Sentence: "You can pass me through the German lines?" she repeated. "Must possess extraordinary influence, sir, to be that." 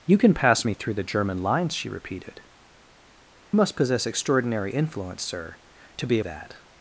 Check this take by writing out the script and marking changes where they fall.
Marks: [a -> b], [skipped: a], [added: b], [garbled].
"You can pass me through the German lines?" she repeated. "Must possess extraordinary influence, sir, to be that."